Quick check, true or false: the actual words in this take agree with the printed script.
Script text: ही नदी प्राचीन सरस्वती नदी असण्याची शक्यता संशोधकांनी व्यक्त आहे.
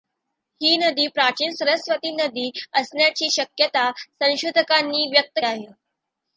true